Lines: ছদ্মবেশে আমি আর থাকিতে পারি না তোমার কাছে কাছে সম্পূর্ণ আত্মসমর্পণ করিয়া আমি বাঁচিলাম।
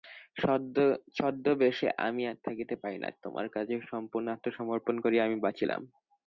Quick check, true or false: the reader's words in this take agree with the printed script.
false